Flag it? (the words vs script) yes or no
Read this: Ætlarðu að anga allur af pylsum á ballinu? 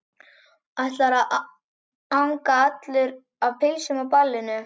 no